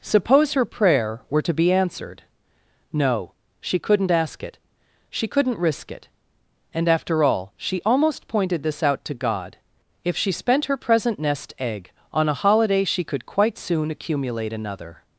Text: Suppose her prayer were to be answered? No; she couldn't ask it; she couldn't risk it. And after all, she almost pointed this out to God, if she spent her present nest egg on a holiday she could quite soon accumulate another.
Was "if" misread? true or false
false